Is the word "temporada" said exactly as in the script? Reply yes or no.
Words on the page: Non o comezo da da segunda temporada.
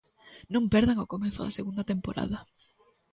yes